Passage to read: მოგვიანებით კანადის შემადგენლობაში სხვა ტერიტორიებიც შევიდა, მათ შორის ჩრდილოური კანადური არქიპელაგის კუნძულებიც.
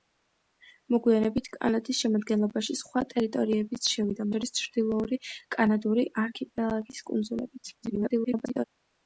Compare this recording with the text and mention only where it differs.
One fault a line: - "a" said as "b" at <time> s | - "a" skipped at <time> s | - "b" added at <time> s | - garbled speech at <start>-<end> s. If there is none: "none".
- "მათ" skipped at 4.3 s
- garbled speech at 7.8-8.6 s